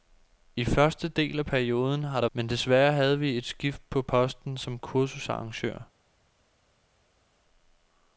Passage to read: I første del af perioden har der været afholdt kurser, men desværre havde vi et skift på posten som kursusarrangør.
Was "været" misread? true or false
true